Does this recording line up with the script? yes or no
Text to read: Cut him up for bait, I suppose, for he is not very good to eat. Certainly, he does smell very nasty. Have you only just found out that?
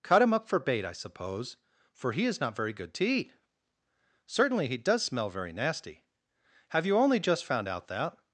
yes